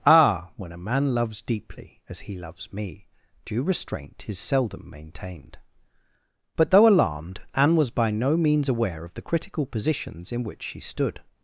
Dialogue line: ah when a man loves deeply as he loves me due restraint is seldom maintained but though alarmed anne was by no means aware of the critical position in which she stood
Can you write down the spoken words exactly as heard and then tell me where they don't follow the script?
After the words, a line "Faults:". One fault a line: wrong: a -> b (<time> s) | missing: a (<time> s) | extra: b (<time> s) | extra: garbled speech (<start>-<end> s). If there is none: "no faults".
ah when a man loves deeply as he loves me due restraint is seldom maintained but though alarmed anne was by no means aware of the critical positions in which she stood
Faults:
wrong: position -> positions (9.7 s)